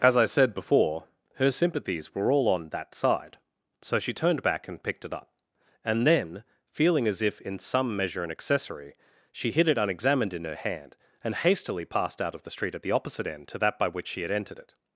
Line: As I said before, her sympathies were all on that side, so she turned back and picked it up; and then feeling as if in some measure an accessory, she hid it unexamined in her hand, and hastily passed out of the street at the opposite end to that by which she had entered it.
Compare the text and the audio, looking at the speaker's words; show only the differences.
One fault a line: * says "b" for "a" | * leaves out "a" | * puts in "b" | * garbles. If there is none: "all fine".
all fine